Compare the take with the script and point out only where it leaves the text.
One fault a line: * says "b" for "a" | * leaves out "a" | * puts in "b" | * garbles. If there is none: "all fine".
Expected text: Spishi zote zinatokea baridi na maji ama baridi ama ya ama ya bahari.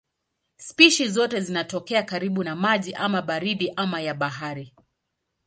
* says "karibu" for "baridi"
* leaves out "ama ya"